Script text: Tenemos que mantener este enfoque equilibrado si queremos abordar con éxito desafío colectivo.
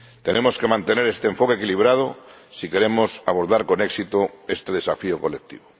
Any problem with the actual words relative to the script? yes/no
yes